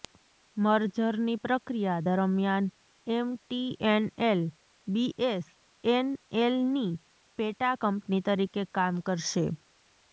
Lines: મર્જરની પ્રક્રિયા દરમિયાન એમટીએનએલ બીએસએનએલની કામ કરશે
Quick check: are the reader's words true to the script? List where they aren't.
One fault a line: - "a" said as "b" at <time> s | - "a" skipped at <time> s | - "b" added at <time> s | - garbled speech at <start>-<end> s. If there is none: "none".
- "પેટા કંપની તરીકે" added at 7.4 s